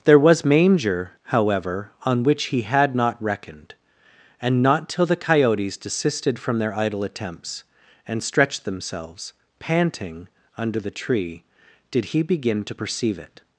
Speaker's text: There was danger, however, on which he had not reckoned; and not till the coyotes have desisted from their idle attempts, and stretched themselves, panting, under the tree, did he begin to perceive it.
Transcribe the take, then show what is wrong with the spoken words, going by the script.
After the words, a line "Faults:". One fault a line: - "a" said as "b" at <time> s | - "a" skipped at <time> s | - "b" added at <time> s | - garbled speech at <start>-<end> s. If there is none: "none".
There was manger, however, on which he had not reckoned; and not till the coyotes desisted from their idle attempts, and stretched themselves, panting, under the tree, did he begin to perceive it.
Faults:
- "danger" said as "manger" at 0.4 s
- "have" skipped at 5.8 s